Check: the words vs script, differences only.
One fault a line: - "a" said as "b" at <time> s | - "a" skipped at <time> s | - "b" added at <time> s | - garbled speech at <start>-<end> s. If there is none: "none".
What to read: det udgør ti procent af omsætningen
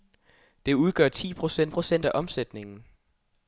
- "procent" added at 1.7 s